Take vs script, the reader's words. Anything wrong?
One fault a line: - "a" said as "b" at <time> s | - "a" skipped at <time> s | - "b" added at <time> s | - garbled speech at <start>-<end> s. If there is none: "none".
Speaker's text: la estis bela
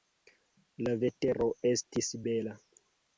- "vetero" added at 1.0 s